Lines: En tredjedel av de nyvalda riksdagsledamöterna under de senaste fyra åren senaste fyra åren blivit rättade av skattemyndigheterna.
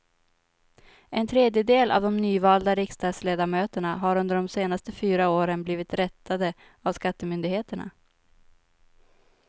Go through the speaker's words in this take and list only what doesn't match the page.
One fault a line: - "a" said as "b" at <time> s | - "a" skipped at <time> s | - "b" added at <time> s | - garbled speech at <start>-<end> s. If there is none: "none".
- "har" added at 4.0 s
- "senaste fyra åren" skipped at 5.6 s